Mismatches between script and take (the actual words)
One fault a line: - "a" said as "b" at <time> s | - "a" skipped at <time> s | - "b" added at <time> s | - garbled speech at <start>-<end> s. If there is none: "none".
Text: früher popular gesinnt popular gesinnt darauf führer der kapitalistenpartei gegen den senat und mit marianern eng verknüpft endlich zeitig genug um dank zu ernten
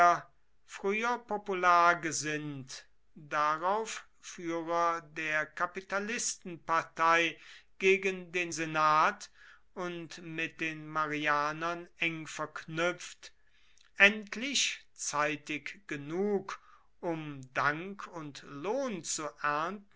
- "popular gesinnt" skipped at 2.9 s
- "den" added at 10.6 s
- "und lohn" added at 18.1 s